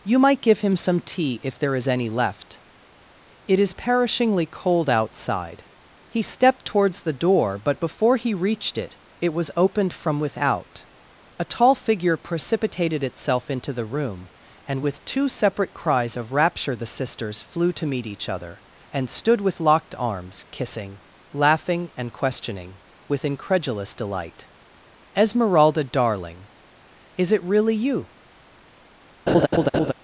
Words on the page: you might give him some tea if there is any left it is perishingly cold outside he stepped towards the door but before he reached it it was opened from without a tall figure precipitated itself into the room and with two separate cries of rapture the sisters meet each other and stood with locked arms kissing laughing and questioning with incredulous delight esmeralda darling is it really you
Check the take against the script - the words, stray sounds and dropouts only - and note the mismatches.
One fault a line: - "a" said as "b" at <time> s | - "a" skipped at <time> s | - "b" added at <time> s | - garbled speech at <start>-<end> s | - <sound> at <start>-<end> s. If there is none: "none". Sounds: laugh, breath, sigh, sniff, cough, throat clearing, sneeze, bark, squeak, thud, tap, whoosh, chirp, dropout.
- "flew to" added at 17.4 s
- laugh at 29.3-29.9 s